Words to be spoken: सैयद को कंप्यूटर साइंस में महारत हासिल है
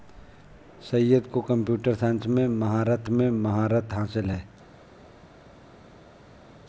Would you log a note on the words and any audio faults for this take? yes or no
yes